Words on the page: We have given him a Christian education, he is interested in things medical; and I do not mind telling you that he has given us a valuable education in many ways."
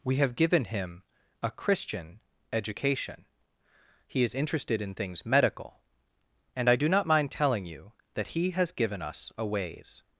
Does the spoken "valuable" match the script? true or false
false